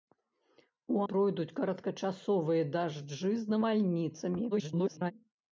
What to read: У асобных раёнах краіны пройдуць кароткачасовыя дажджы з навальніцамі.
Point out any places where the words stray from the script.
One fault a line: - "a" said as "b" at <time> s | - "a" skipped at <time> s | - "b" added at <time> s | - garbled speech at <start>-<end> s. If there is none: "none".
- "асобных раёнах краіны" skipped at 1.0 s
- garbled speech at 4.5-5.1 s